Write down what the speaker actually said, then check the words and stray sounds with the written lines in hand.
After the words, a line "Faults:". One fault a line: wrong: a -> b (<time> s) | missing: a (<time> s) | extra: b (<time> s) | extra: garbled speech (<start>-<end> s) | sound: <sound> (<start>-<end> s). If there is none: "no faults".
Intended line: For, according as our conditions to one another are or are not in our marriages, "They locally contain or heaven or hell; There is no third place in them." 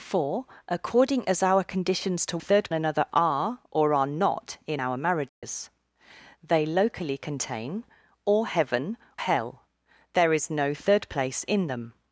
For, according as our conditions to third another are or are not in our marriages, "They locally contain or heaven hell; There is no third place in them."
Faults:
wrong: one -> third (2.4 s)
sound: dropout (5.3-5.4 s)
missing: or (9.0 s)